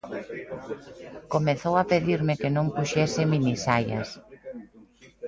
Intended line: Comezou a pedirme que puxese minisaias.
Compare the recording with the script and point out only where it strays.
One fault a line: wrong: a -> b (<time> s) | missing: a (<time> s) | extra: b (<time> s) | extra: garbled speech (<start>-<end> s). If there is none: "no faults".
extra: non (2.5 s)